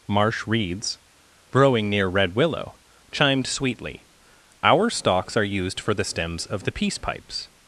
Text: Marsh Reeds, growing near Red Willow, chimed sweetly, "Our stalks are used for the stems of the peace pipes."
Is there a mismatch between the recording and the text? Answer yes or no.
no